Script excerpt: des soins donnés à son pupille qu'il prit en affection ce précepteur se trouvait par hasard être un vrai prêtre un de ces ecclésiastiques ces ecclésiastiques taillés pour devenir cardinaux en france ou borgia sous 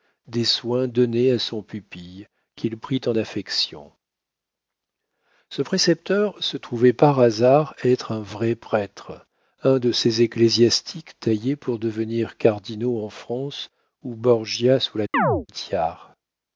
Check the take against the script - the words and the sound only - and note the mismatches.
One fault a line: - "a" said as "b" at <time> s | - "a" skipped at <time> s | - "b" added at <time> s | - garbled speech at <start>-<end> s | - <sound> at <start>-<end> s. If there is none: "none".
- "ces ecclésiastiques" skipped at 11.2 s
- chirp at 15.1-15.5 s